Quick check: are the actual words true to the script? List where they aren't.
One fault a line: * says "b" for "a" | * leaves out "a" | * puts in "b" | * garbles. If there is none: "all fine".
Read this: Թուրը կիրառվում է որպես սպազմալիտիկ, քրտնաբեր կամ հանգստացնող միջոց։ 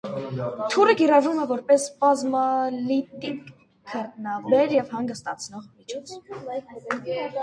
* says "և" for "կամ"